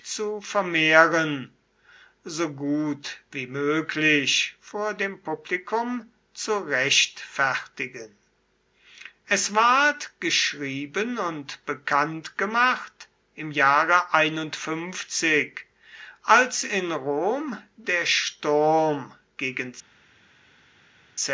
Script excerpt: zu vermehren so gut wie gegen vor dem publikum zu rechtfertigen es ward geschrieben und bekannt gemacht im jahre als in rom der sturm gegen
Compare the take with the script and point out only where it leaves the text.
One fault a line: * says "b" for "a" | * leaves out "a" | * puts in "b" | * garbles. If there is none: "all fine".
* says "möglich" for "gegen"